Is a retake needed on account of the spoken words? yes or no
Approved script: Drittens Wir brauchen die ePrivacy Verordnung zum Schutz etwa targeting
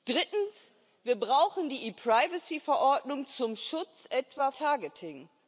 no